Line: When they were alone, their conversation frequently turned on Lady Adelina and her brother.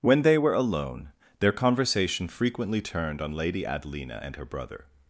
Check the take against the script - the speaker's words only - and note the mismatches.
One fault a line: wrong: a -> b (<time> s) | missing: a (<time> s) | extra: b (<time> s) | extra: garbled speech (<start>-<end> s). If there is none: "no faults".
no faults